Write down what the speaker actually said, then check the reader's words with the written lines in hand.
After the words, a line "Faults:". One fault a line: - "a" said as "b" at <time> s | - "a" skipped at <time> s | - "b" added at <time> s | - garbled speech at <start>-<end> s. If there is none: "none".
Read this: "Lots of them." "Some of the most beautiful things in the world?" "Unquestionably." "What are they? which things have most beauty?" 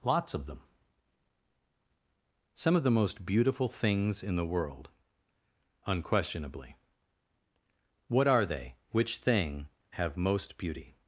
"Lots of them." "Some of the most beautiful things in the world?" "Unquestionably." "What are they? which thing have most beauty?"
Faults:
- "things" said as "thing" at 9.2 s